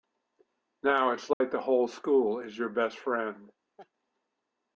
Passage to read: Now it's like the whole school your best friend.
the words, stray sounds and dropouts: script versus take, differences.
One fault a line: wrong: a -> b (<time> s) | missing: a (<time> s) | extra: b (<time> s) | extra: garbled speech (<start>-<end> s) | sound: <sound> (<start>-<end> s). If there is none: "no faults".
sound: dropout (1.3-1.4 s)
extra: is (2.4 s)
sound: laugh (3.8-3.9 s)